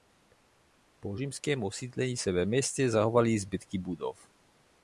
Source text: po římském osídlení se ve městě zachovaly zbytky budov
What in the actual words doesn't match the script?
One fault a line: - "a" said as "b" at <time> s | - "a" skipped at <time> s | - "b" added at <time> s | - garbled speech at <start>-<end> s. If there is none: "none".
none